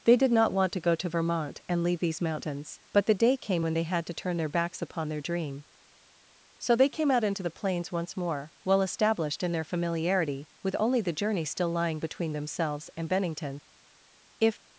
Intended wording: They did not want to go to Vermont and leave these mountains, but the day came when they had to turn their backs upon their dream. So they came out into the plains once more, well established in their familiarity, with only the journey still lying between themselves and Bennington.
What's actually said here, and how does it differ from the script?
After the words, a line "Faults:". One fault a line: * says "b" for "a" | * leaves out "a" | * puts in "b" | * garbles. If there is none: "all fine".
They did not want to go to Vermont and leave these mountains, but the day came when they had to turn their backs upon their dream. So they came out into the plains once more, well established in their familiarity, with only the journey still lying between themselves and Bennington. "If
Faults:
* puts in "If"